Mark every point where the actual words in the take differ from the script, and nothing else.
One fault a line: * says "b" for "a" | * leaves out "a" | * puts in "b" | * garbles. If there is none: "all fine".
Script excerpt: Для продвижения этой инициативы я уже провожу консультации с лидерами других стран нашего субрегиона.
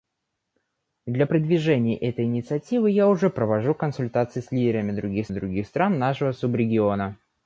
* puts in "других"